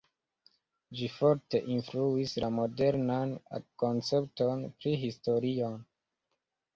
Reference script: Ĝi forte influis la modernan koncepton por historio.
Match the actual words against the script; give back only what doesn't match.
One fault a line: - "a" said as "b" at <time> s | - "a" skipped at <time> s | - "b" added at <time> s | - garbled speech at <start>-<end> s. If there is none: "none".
- "por" said as "pri" at 4.8 s